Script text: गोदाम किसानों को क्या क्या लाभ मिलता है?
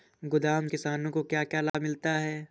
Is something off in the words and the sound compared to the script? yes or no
yes